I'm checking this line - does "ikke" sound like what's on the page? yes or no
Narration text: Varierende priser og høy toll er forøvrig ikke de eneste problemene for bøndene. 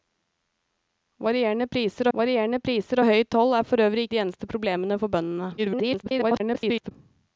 no